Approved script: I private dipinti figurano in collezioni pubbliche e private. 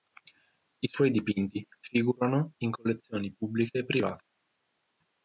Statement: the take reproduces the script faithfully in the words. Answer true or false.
false